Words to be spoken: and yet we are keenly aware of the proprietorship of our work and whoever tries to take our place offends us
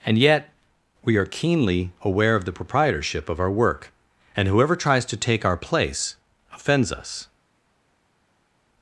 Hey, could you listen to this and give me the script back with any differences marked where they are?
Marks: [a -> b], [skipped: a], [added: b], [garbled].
and yet we are keenly aware of the proprietorship of our work and whoever tries to take our place offends us